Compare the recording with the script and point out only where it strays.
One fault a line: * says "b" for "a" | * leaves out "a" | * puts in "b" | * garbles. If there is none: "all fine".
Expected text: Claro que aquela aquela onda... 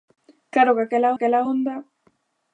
all fine